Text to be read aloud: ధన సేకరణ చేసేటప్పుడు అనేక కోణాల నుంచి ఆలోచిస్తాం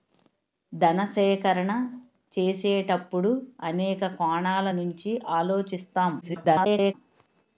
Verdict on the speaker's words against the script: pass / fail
fail